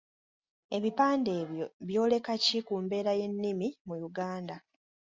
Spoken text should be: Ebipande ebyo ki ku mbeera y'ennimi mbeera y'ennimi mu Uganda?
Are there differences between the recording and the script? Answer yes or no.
yes